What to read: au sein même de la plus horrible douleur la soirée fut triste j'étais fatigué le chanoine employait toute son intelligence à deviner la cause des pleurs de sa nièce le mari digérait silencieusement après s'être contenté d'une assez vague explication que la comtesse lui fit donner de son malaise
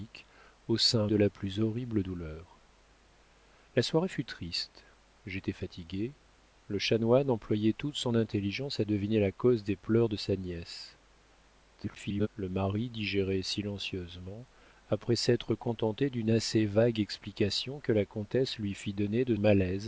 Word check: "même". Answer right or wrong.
wrong